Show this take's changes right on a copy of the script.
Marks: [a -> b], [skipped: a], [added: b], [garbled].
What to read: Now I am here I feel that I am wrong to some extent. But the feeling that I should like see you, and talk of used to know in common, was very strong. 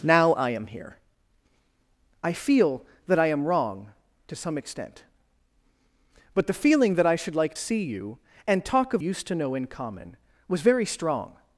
Now I am here I feel that I am wrong to some extent. But the feeling that I should like see you, and talk of used to know in common, was very strong.